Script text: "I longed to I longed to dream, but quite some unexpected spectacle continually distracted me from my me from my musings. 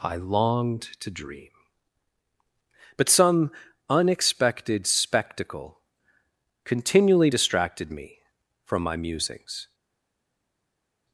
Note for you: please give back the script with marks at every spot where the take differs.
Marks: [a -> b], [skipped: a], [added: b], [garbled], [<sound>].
"I longed to [skipped: I longed to] dream, but [skipped: quite] some unexpected spectacle continually distracted me from my [skipped: me from my] musings.